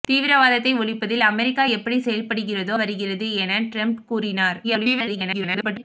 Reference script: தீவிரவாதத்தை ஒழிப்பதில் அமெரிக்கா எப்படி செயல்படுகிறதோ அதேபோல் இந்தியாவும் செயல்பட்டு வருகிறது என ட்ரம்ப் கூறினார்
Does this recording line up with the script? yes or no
no